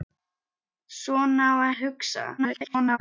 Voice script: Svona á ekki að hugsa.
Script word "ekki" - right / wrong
wrong